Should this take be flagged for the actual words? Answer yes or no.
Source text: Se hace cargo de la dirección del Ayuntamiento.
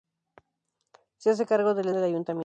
yes